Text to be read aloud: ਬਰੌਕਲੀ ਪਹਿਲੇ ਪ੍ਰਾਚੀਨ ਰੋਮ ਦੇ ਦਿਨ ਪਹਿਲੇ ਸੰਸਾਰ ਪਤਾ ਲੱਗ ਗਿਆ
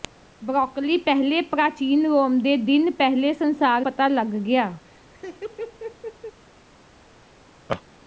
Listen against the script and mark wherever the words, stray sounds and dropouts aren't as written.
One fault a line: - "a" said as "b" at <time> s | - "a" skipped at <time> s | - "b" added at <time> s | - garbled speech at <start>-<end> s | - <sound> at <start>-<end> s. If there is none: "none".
- laugh at 4.8-6.4 s
- laugh at 7.7-7.8 s